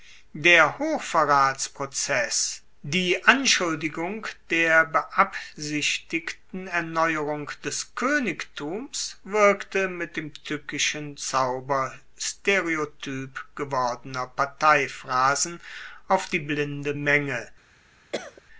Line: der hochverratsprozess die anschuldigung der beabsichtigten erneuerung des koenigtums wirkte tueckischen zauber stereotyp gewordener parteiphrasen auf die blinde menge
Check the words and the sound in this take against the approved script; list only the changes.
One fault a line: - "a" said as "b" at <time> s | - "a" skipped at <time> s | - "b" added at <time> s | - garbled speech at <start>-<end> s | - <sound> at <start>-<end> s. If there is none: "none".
- "mit dem" added at 9.9 s
- cough at 18.1-18.4 s